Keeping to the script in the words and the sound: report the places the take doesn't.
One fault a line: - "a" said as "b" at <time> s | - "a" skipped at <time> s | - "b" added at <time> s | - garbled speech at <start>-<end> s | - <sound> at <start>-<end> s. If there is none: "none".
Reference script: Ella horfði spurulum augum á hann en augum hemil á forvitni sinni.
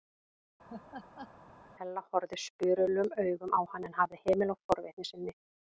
- laugh at 0.7-1.3 s
- "augum" said as "hafði" at 4.0 s